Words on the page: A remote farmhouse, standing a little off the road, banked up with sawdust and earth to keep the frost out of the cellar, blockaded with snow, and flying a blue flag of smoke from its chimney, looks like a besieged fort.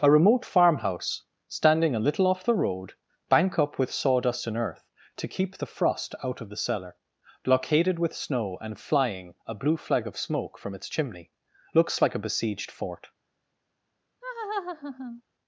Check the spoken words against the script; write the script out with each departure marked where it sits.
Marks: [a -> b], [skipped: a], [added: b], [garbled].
A remote farmhouse, standing a little off the road, [banked -> bank] up with sawdust and earth to keep the frost out of the cellar, blockaded with snow, and flying a blue flag of smoke from its chimney, looks like a besieged fort.